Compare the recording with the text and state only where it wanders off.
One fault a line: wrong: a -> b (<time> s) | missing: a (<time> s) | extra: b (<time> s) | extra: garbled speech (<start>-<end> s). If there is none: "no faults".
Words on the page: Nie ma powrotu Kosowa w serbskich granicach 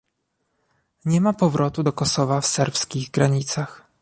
extra: do (1.8 s)